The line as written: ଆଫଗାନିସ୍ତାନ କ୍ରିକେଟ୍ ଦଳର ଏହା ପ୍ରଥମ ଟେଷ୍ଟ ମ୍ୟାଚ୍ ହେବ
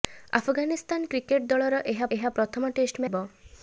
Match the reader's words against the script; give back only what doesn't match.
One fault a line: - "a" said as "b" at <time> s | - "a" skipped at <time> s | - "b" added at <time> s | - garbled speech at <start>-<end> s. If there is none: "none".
- "ଏହା" added at 2.2 s
- "ମ୍ୟାଚ୍" skipped at 3.1 s